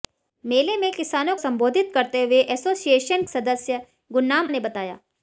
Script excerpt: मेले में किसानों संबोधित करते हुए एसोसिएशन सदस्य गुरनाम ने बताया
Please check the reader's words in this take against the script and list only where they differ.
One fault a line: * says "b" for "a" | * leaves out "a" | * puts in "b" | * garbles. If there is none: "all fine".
all fine